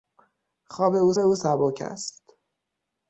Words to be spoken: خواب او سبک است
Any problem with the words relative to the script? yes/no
yes